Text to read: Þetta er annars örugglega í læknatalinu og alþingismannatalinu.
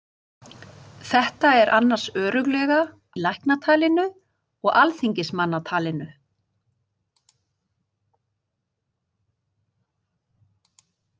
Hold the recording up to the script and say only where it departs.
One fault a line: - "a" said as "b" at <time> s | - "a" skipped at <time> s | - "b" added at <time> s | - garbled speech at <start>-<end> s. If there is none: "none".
none